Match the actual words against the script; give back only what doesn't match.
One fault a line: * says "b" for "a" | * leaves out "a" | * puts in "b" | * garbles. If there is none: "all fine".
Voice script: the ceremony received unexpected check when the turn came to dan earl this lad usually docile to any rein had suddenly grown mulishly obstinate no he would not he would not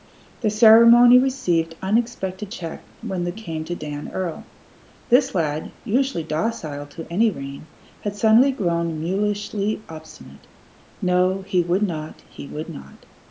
* leaves out "turn"